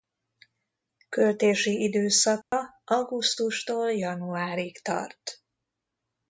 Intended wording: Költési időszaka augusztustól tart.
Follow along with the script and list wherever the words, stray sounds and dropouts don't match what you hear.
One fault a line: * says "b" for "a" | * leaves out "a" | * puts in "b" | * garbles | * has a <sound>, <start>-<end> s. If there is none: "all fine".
* has a dropout, 2.4-2.5 s
* puts in "januárig"